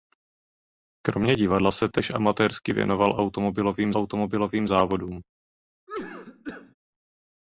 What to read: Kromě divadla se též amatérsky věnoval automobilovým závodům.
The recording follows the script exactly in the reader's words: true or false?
false